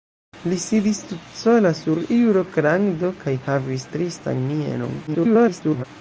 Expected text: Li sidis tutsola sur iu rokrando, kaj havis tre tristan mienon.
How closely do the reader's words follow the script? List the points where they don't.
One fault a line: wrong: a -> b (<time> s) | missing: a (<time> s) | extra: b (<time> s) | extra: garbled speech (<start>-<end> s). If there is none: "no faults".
missing: tre (3.9 s)
extra: garbled speech (5.1-5.8 s)